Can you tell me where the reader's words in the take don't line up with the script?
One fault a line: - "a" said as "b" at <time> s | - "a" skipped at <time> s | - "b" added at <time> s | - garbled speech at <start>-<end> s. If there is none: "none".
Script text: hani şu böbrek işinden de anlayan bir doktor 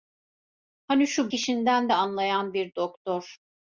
- "böbrek" skipped at 1.3 s